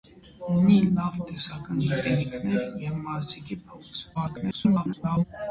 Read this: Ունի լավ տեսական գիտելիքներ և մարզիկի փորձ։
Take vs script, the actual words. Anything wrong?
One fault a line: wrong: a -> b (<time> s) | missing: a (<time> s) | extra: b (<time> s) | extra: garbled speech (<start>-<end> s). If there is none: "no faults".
extra: garbled speech (4.1-5.2 s)